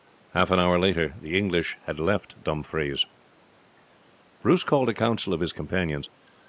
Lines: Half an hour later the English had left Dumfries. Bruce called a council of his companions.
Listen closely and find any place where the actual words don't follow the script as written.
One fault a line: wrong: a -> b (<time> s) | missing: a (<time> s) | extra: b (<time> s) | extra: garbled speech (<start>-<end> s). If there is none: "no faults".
no faults